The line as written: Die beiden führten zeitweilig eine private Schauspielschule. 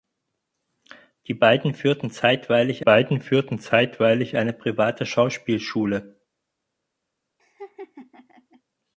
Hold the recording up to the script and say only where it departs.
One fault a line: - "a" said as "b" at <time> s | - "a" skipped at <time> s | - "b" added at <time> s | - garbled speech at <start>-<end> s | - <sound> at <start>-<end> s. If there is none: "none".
- "beiden führten zeitweilig" added at 2.8 s
- laugh at 7.4-8.6 s